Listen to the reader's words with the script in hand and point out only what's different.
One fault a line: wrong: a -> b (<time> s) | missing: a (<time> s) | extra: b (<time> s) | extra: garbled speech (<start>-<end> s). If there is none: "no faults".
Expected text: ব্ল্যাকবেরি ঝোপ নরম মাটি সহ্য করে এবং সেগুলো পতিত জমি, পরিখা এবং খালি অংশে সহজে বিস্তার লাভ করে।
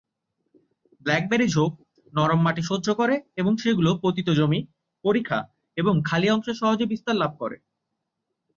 no faults